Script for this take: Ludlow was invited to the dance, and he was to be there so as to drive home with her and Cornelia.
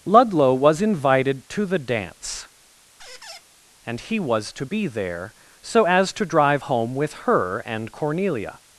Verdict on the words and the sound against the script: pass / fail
fail